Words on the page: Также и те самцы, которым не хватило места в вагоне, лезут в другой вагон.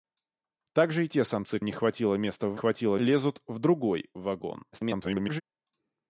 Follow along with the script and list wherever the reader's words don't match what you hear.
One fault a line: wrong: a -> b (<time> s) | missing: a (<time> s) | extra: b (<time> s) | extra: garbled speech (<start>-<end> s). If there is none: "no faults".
missing: которым (1.6 s)
wrong: вагоне -> хватило (2.5 s)
extra: garbled speech (4.7-5.4 s)